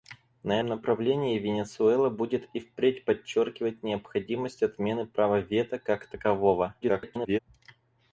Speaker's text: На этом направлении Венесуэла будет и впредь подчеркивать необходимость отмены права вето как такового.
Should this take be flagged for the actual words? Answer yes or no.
yes